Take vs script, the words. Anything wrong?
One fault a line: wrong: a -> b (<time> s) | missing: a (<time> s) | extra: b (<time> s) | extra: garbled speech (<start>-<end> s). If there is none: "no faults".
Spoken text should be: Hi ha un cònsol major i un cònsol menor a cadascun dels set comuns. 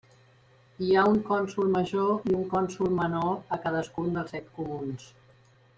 no faults